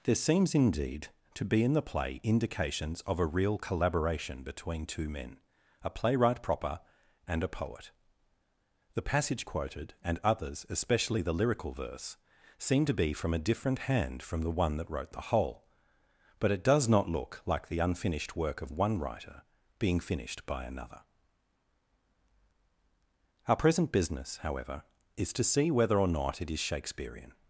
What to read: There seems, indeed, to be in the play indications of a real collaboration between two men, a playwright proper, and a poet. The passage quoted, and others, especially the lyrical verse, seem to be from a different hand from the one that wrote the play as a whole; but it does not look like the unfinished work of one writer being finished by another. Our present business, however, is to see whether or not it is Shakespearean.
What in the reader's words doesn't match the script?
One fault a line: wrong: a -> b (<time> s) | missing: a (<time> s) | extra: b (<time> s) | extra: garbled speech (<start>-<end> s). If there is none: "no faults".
missing: play as a (15.3 s)